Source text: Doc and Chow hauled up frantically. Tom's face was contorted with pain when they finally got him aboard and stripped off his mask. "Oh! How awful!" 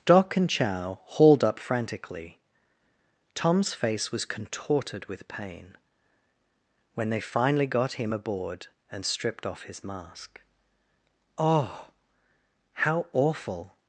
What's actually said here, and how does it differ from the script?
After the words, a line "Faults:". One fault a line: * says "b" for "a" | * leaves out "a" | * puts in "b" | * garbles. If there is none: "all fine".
Doc and Chow hauled up frantically. Tom's face was contorted with pain when they finally got him aboard and stripped off his mask. "Oh! How awful!"
Faults:
all fine